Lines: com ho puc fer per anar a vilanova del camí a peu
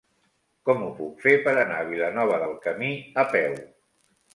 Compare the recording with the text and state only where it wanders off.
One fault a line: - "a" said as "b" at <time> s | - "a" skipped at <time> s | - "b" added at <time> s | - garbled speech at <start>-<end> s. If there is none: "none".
none